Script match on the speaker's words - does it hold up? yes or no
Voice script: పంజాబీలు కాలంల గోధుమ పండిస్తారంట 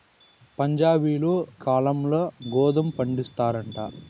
yes